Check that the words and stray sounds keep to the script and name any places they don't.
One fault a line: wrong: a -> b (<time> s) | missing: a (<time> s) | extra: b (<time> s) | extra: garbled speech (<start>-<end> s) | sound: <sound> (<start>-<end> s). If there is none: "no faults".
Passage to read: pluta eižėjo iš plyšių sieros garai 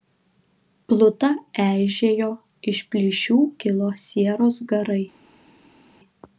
extra: kilo (3.6 s)